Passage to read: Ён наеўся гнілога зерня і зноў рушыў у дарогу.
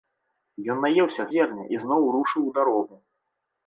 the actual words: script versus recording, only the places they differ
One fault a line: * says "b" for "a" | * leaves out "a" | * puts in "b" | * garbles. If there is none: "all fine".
* leaves out "гнілога"